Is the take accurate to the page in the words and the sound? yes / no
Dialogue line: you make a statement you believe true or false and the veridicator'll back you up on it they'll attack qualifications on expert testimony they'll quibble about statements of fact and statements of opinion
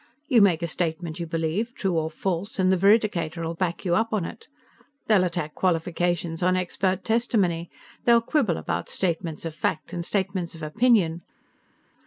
yes